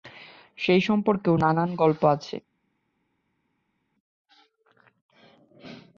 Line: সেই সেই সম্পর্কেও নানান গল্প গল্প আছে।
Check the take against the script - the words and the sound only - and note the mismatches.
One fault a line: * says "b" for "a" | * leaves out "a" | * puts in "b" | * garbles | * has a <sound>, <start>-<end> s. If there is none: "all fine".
* leaves out "সেই"
* leaves out "গল্প"